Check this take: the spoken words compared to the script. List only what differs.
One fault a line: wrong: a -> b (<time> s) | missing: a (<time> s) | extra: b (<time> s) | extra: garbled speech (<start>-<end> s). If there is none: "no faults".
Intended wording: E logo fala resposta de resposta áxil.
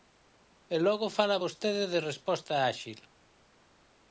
wrong: resposta -> vostede (1.4 s)